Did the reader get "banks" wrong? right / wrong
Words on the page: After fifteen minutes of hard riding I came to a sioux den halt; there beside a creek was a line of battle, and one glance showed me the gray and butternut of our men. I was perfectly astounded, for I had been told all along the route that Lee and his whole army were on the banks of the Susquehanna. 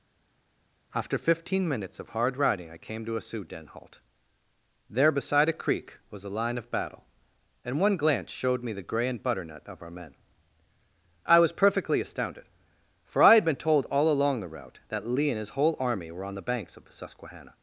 right